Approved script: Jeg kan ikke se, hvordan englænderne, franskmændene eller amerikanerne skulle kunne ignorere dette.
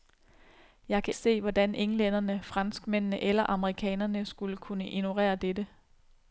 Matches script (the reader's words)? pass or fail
fail